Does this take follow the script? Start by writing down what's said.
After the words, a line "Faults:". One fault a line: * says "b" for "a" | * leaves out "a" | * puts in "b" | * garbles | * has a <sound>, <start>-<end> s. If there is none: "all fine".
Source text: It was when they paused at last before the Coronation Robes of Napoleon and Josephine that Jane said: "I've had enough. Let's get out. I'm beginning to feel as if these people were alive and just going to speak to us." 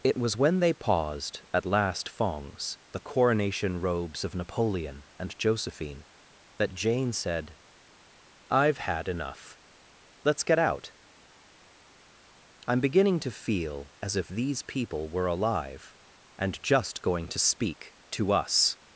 It was when they paused at last fongs the Coronation Robes of Napoleon and Josephine that Jane said: "I've had enough. Let's get out. I'm beginning to feel as if these people were alive and just going to speak to us."
Faults:
* says "fongs" for "before"